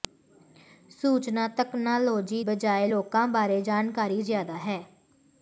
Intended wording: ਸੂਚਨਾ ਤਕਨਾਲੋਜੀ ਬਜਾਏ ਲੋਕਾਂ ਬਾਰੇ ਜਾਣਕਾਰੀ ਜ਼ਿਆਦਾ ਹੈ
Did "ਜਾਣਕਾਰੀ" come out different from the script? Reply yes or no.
no